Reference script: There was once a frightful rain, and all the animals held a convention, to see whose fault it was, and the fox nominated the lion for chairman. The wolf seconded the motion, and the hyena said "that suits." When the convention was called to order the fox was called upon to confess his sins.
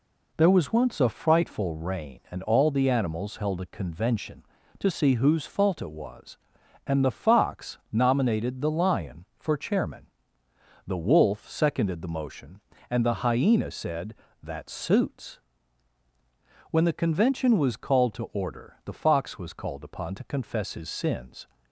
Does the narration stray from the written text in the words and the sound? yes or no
no